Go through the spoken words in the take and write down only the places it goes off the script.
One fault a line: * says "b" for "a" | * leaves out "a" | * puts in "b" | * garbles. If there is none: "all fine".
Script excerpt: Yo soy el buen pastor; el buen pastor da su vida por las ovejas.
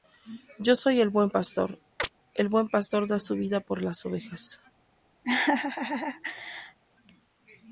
all fine